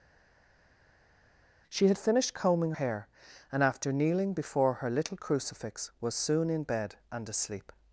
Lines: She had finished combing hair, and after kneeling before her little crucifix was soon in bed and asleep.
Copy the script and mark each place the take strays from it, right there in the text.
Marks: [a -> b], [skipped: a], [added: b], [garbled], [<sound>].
She had finished combing hair, and after kneeling before her little crucifix was soon in bed and asleep.